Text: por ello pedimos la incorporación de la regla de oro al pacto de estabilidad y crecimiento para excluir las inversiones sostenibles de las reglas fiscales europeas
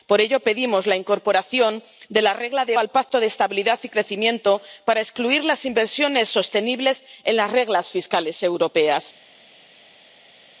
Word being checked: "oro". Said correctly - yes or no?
no